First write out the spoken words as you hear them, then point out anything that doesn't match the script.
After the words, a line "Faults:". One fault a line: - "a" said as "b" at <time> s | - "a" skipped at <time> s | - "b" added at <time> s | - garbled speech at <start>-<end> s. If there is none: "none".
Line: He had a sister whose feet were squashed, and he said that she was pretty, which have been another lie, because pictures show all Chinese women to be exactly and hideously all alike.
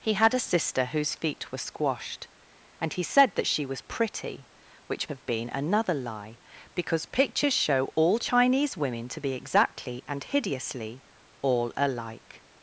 He had a sister whose feet were squashed, and he said that she was pretty, which have been another lie, because pictures show all Chinese women to be exactly and hideously all alike.
Faults:
none